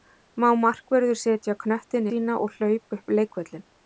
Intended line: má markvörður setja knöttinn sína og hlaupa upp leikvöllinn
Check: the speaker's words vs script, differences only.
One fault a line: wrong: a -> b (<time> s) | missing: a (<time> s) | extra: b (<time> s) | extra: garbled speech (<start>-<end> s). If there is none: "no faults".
no faults